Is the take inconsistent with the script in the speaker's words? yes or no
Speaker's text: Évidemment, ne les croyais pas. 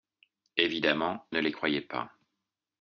no